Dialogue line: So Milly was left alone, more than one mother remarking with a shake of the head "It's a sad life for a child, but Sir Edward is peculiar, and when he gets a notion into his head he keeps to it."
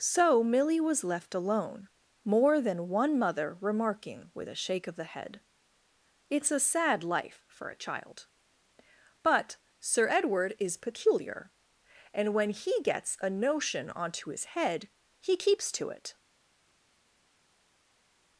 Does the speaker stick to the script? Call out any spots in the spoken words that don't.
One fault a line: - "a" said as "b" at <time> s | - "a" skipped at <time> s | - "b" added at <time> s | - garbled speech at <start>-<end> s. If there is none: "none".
- "into" said as "onto" at 13.9 s